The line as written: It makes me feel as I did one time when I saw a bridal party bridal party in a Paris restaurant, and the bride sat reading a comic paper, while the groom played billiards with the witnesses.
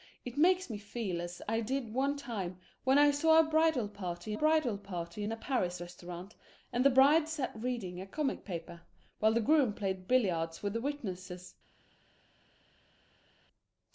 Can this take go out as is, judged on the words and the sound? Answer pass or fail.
pass